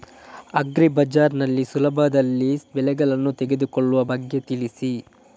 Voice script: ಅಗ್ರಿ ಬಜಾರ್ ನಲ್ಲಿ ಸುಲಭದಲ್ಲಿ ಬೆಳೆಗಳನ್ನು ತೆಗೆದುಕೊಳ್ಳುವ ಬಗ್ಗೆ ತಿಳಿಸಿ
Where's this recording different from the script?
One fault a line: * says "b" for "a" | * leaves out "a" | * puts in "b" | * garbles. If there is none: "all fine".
all fine